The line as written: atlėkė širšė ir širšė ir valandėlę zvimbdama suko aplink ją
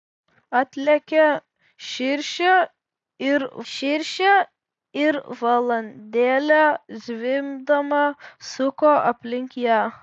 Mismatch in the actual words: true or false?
false